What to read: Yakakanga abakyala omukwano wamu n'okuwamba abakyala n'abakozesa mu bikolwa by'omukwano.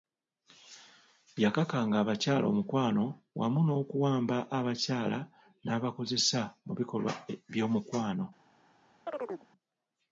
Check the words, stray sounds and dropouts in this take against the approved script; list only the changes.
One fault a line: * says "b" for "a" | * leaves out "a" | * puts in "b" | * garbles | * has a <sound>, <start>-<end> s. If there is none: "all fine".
* has a chirp, 9.1-9.5 s